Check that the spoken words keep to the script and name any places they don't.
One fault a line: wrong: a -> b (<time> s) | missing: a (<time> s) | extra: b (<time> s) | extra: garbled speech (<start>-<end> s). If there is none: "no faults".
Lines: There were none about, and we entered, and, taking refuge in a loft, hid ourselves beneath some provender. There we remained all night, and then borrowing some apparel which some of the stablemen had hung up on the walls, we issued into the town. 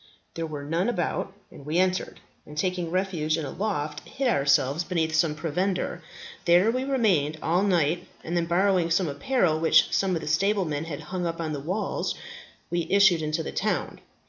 no faults